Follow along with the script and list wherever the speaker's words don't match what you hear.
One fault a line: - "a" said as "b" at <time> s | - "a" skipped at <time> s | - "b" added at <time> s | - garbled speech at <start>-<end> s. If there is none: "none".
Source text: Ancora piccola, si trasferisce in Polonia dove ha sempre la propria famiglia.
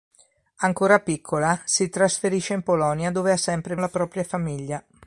none